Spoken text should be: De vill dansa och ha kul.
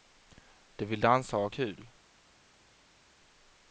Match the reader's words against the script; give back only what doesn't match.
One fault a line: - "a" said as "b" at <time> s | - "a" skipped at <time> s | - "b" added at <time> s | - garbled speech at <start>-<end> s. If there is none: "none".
none